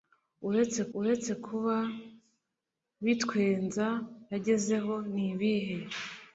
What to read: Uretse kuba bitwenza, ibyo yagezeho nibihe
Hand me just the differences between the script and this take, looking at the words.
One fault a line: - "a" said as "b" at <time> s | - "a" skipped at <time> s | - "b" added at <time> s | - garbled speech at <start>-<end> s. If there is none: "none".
- "uretse" added at 1.0 s
- "ibyo" skipped at 3.9 s